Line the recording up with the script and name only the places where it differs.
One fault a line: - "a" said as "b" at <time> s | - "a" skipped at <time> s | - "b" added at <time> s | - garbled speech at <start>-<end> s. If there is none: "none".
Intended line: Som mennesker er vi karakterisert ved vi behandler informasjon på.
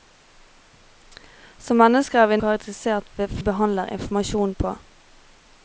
none